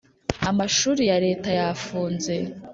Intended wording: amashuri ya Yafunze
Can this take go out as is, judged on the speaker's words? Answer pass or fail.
fail